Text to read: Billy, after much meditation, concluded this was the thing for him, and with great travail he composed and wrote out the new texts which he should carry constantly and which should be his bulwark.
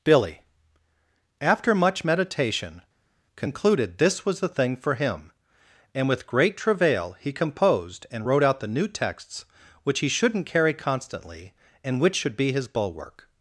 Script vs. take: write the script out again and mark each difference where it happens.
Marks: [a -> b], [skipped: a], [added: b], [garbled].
Billy, after much meditation, concluded this was the thing for him, and with great travail he composed and wrote out the new texts which he [should -> shouldn't] carry constantly and which should be his bulwark.